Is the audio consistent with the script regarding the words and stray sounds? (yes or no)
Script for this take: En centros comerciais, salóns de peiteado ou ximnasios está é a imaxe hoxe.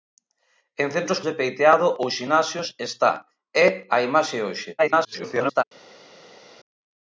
no